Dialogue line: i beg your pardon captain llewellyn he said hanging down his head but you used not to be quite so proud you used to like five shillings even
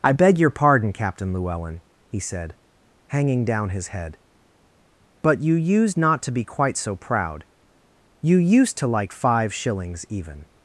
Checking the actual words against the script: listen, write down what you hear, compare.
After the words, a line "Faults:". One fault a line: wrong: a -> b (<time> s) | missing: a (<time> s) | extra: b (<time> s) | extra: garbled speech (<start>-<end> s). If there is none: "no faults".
i beg your pardon captain llewellyn he said hanging down his head but you used not to be quite so proud you used to like five shillings even
Faults:
no faults